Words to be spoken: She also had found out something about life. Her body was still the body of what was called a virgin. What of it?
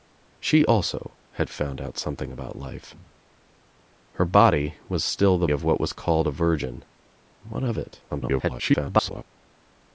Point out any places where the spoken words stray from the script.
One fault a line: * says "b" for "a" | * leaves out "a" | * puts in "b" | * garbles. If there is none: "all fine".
* leaves out "body"
* garbles